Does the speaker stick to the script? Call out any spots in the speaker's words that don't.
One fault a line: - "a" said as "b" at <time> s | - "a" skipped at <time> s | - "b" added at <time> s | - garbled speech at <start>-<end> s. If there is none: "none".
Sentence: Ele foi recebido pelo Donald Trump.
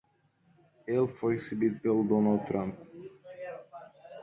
none